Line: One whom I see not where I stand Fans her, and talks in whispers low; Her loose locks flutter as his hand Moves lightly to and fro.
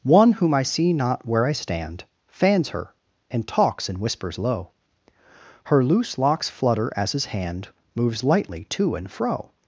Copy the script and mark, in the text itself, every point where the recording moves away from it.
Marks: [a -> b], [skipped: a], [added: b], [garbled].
One whom I see not where I stand Fans her, and talks in whispers low; Her loose locks flutter as his hand Moves lightly to and fro.